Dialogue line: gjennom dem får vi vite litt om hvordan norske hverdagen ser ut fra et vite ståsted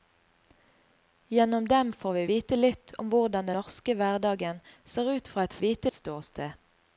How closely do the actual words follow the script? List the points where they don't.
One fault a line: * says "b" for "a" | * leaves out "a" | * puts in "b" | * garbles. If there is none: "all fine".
all fine